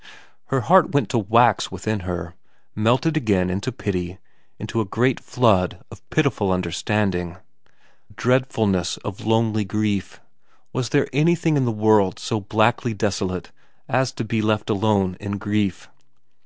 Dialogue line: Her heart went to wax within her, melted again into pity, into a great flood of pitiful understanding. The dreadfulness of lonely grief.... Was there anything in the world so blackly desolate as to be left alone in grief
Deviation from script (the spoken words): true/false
true